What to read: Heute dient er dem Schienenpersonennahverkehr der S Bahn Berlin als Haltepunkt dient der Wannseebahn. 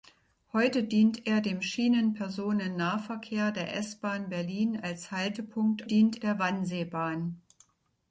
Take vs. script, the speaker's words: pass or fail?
pass